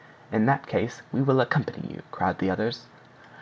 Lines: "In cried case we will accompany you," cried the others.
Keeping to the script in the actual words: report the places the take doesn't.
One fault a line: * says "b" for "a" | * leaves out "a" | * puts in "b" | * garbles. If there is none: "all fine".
* says "that" for "cried"